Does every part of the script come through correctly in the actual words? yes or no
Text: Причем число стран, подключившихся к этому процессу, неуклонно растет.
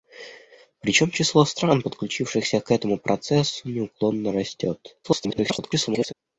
no